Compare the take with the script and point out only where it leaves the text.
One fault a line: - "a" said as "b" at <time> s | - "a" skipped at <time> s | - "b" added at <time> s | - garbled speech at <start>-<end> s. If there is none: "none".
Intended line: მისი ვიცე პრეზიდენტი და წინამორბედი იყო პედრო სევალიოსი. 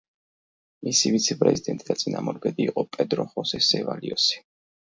- "ხოსე" added at 3.4 s